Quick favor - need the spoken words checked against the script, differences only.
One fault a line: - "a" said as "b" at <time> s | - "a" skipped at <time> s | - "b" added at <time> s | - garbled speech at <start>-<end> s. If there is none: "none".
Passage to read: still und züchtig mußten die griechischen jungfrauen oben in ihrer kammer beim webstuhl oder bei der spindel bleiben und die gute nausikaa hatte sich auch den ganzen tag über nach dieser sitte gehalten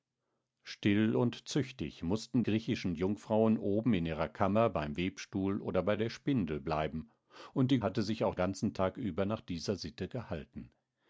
- "die" skipped at 2.4 s
- "gute nausikaa" skipped at 7.8 s
- "den" skipped at 8.3 s